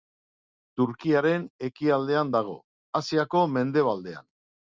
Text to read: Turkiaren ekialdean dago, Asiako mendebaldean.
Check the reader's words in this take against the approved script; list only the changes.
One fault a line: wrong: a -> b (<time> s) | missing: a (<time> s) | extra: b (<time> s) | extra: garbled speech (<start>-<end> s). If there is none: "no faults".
no faults